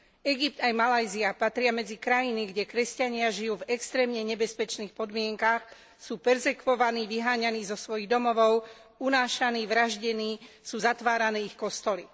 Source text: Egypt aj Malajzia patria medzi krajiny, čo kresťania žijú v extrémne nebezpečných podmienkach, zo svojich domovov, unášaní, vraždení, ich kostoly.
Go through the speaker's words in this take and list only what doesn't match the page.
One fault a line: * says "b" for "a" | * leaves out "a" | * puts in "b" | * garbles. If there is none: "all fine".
* says "kde" for "čo"
* puts in "sú perzekvovaní vyháňaní"
* puts in "sú zatvárané"